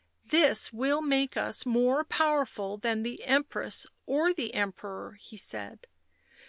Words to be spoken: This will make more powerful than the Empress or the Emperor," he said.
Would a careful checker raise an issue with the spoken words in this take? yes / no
yes